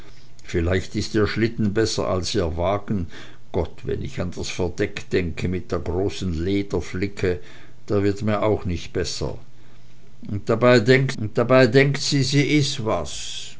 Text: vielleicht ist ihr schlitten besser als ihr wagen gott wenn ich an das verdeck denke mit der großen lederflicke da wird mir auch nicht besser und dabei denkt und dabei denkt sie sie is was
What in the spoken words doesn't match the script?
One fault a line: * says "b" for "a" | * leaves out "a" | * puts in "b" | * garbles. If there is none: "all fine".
all fine